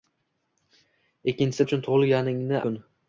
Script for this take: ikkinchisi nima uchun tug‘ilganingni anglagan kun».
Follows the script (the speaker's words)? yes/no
no